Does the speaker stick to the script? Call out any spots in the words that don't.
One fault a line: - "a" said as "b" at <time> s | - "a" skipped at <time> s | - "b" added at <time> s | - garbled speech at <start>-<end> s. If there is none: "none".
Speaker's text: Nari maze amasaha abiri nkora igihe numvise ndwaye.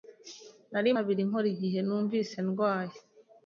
- "maze amasaha" skipped at 0.9 s